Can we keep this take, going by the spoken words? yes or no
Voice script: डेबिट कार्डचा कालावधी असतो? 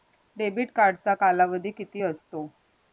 no